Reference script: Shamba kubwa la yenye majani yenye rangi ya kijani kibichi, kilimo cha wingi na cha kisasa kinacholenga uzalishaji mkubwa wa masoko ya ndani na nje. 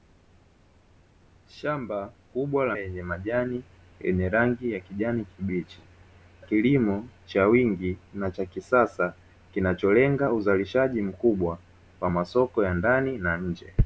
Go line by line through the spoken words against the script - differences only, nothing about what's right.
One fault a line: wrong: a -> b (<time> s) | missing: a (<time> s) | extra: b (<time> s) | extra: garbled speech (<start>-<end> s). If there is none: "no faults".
no faults